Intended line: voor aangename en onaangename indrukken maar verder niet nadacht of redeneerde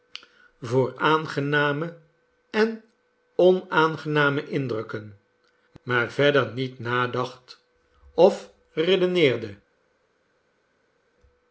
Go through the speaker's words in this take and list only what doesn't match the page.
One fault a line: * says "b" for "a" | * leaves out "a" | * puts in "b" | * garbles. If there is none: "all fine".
all fine